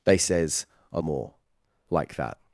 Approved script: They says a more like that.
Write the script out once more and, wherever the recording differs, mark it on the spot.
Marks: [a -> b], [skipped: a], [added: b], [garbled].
They says a more like that.